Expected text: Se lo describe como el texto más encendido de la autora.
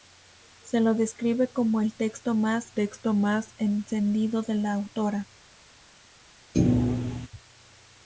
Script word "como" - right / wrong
right